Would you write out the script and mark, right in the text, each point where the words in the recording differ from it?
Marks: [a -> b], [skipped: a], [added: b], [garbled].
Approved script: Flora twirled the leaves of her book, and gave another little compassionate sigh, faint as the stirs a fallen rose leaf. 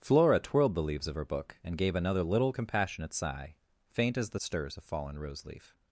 Flora twirled the leaves of her book, and gave another little compassionate sigh, faint as the stirs a fallen rose leaf.